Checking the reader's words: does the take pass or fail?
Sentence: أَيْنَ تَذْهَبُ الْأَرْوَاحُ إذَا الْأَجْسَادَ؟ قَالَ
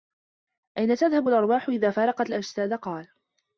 fail